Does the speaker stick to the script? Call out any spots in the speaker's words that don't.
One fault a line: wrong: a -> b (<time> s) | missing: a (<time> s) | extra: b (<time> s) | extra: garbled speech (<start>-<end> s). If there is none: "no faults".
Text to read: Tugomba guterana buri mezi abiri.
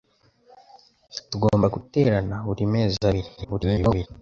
extra: garbled speech (3.4-4.1 s)